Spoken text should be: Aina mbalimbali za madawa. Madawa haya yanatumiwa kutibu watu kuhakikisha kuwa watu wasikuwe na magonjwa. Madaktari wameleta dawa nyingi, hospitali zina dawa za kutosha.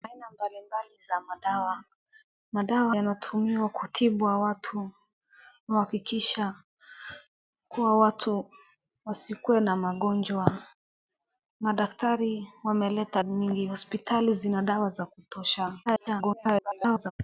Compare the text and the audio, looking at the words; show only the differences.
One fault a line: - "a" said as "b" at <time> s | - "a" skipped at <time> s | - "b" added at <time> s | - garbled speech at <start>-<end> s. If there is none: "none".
- "haya" skipped at 3.0 s
- "dawa" skipped at 13.2 s
- garbled speech at 15.9-17.1 s